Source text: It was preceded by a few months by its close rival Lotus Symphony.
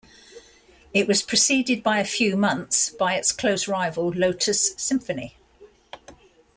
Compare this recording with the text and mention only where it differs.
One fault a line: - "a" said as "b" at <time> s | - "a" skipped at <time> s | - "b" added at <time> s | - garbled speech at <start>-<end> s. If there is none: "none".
none